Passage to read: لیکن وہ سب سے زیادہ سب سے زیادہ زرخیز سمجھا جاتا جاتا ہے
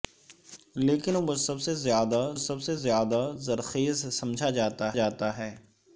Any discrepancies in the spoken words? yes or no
no